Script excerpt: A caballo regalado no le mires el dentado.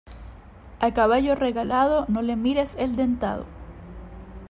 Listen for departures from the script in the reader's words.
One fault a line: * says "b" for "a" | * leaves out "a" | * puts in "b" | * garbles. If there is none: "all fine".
all fine